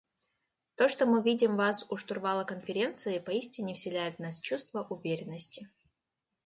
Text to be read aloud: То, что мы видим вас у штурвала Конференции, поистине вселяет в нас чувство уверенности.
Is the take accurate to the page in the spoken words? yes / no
yes